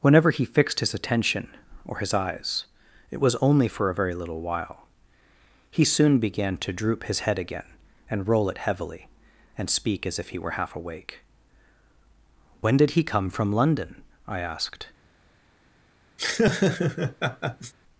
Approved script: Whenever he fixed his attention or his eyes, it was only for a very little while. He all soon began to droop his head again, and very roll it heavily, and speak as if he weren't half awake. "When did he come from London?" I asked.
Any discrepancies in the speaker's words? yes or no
yes